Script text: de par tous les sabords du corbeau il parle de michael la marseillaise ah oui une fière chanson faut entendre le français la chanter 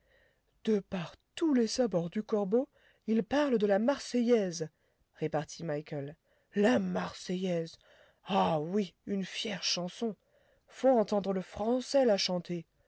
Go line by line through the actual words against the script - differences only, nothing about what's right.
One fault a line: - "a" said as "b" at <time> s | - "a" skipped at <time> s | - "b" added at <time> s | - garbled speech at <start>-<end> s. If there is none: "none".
- "la marseillaise répartit" added at 3.7 s